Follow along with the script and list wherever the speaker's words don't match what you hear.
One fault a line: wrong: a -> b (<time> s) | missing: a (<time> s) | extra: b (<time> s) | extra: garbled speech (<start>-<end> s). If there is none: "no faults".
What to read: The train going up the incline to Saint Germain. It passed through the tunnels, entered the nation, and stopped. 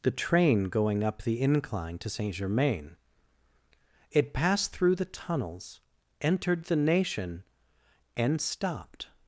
no faults